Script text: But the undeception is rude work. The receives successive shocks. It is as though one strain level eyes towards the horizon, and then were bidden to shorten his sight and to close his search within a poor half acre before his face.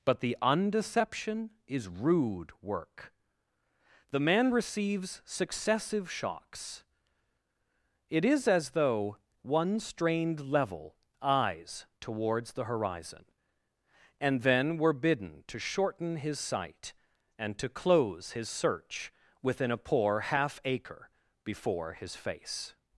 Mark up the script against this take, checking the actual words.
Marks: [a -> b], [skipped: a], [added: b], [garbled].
But the undeception is rude work. The [added: man] receives successive shocks. It is as though one [strain -> strained] level eyes towards the horizon, and then were bidden to shorten his sight and to close his search within a poor half acre before his face.